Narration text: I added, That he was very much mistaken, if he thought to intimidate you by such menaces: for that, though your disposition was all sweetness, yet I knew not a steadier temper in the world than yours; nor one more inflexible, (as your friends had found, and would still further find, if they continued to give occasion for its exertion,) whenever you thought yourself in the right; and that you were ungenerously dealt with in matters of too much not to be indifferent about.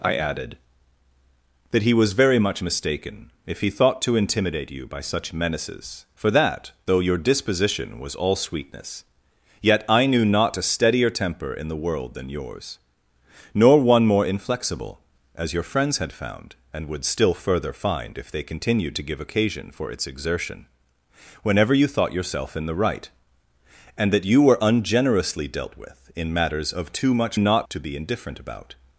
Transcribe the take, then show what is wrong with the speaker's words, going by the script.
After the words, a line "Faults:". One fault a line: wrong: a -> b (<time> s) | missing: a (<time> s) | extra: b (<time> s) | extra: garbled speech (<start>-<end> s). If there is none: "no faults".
I added, That he was very much mistaken, if he thought to intimidate you by such menaces: for that, though your disposition was all sweetness, yet I knew not a steadier temper in the world than yours; nor one more inflexible, (as your friends had found, and would still further find, if they continued to give occasion for its exertion,) whenever you thought yourself in the right; and that you were ungenerously dealt with in matters of too much not to be indifferent about.
Faults:
no faults